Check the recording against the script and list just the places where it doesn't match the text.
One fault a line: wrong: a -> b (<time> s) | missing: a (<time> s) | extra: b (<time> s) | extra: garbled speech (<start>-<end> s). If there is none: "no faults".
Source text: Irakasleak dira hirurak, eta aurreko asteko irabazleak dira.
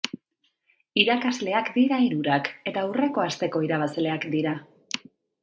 no faults